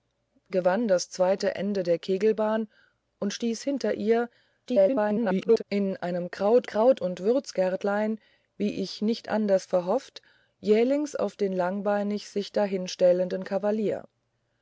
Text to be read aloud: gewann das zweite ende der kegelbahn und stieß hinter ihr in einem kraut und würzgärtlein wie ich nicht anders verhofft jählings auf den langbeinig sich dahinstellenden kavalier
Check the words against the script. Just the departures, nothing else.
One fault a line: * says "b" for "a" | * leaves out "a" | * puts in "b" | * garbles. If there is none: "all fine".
* garbles
* puts in "kraut"